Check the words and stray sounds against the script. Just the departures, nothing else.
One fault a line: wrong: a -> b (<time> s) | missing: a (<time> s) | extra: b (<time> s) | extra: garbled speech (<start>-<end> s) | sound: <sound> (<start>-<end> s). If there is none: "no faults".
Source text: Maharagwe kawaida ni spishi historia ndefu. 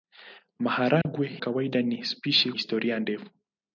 sound: dropout (1.0-1.1 s)